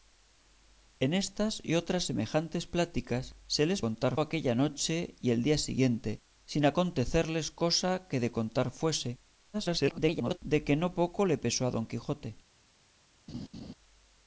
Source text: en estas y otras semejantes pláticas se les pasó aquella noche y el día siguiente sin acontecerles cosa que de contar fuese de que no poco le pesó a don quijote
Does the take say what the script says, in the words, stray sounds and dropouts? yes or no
no